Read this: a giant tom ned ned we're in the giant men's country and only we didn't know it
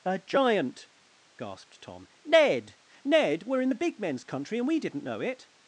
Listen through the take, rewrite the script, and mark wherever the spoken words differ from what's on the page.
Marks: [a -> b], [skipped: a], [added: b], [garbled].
a giant [added: gasped] tom ned ned we're in the [giant -> big] men's country and [skipped: only] we didn't know it